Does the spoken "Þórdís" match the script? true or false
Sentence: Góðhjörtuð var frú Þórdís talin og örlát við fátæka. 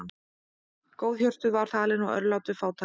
false